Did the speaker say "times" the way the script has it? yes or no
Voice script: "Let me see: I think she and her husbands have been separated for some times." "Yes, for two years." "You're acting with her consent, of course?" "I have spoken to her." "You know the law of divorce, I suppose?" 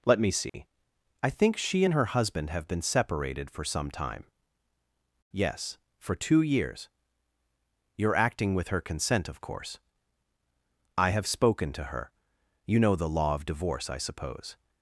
no